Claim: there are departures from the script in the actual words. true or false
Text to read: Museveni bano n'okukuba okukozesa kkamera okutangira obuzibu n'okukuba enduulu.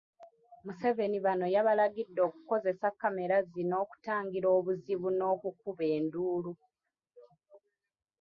true